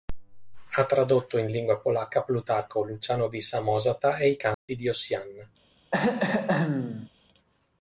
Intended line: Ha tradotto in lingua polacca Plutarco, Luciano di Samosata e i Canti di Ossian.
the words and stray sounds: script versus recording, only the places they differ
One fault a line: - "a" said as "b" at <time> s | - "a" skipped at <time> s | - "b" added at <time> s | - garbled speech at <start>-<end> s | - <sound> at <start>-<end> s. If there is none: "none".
- dropout at 4.5-4.7 s
- throat clearing at 5.9-7.1 s